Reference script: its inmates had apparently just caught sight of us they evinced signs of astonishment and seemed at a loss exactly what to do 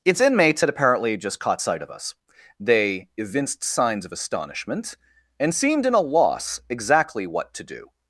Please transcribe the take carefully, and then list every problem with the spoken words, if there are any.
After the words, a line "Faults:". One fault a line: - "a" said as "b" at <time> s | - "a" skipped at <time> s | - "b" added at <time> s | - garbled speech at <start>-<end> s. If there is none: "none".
its inmates had apparently just caught sight of us they evinced signs of astonishment and seemed in a loss exactly what to do
Faults:
- "at" said as "in" at 5.9 s